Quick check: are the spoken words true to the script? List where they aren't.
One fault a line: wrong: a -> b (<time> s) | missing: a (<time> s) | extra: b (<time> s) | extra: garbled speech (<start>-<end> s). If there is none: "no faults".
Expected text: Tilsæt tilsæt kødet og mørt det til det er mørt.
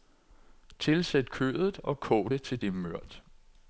missing: tilsæt (1.3 s)
wrong: mørt -> kog (2.0 s)